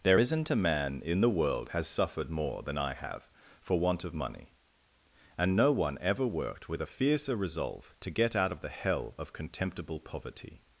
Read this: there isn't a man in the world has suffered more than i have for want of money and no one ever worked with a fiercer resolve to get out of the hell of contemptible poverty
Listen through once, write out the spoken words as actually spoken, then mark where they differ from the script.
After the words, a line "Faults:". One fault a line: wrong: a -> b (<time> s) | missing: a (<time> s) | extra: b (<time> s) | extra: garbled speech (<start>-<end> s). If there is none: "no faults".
there isn't a man in the world has suffered more than i have for want of money and no one ever worked with a fiercer resolve to get out of the hell of contemptible poverty
Faults:
no faults